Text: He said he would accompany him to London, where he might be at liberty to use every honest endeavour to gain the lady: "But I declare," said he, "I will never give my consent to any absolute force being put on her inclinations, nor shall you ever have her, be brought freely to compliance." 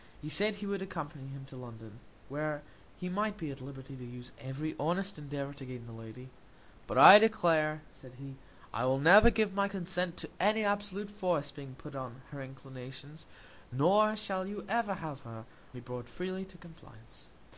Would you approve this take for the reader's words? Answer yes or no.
yes